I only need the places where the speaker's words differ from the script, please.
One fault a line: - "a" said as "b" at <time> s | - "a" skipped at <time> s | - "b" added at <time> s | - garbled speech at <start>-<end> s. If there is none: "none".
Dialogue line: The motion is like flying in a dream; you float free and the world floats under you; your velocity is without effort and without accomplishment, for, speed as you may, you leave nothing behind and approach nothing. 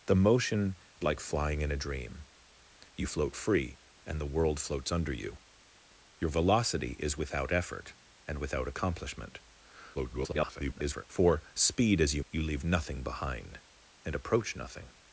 - "is" skipped at 0.8 s
- garbled speech at 9.9-11.0 s
- "may" skipped at 12.2 s